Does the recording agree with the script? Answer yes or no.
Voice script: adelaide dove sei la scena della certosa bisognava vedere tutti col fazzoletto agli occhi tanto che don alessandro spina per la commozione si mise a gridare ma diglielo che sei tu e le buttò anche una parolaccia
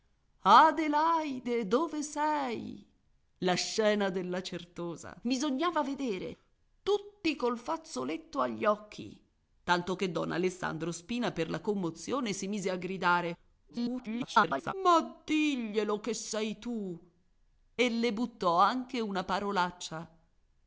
no